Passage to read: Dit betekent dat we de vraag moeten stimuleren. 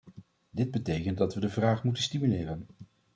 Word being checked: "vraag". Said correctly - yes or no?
yes